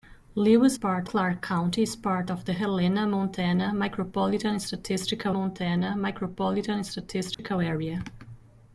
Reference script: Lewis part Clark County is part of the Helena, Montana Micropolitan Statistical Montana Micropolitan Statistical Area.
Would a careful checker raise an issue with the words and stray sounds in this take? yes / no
yes